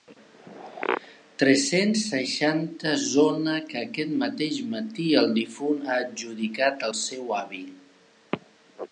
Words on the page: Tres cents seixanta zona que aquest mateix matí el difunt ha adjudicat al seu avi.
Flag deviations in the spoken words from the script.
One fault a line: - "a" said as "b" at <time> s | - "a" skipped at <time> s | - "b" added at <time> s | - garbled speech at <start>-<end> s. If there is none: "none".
none